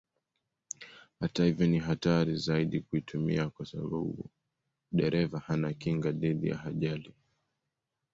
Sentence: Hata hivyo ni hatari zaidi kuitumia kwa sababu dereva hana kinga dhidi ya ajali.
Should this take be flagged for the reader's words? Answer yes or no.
no